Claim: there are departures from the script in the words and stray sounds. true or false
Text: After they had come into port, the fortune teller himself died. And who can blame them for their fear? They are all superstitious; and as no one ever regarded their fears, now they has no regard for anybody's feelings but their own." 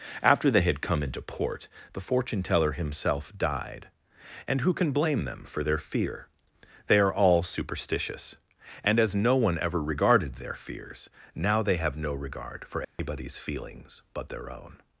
true